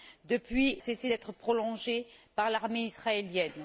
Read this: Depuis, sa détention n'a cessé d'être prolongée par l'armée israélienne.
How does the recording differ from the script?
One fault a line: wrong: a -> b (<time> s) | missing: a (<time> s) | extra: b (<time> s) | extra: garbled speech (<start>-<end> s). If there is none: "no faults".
missing: sa détention n'a (0.8 s)